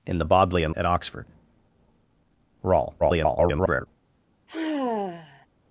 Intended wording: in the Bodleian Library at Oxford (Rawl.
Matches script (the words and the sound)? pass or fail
fail